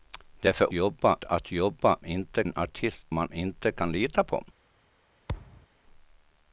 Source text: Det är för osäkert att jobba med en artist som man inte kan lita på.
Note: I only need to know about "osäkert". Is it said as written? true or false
false